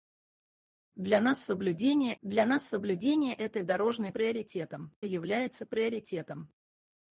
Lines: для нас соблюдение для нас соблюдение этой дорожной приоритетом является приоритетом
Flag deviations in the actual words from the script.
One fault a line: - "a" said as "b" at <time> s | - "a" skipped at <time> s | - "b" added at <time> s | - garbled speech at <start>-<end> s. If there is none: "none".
none